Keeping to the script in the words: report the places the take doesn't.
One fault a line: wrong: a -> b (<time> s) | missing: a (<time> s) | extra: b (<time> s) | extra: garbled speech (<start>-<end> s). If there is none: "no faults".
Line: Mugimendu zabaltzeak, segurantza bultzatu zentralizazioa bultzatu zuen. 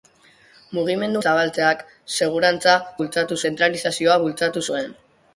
no faults